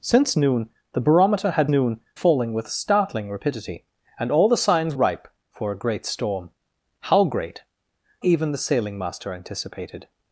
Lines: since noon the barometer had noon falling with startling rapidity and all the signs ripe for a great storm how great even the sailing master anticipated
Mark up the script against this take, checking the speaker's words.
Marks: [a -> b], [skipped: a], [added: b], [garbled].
since noon the barometer had noon falling with startling rapidity and all the signs ripe for a great storm how great even the sailing master anticipated